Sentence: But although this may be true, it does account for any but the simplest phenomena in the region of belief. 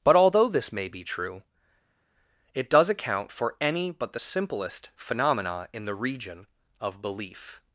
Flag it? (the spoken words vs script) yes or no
no